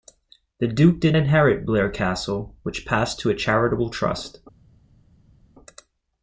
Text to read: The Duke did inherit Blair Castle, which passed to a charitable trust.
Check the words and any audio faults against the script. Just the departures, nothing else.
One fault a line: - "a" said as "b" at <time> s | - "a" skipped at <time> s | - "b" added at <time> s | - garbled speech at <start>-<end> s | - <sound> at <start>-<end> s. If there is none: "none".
none